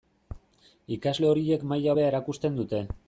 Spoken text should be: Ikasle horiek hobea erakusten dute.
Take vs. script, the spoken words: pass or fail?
fail